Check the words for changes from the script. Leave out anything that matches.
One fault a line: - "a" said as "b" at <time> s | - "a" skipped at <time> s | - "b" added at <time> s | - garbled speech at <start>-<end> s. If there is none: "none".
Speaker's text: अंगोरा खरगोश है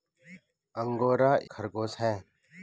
none